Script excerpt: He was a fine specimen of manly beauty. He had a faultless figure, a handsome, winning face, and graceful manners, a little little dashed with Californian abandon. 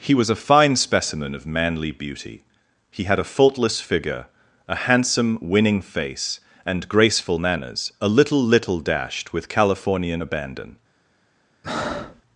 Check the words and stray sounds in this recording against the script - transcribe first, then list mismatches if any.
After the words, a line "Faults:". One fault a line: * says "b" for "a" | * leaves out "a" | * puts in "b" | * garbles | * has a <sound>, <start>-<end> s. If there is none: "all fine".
He was a fine specimen of manly beauty. He had a faultless figure, a handsome, winning face, and graceful manners, a little little dashed with Californian abandon.
Faults:
* has a breath, 11.6-12.2 s